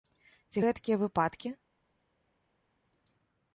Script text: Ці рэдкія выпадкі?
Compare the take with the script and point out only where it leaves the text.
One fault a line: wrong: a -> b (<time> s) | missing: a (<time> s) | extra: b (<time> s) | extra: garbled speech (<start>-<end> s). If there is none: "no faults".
no faults